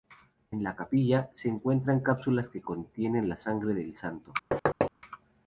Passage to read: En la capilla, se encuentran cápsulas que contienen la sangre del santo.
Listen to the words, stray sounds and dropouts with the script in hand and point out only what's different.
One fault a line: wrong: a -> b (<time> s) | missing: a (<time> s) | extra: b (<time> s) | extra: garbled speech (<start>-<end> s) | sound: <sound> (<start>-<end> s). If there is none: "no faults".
sound: thud (4.5-4.9 s)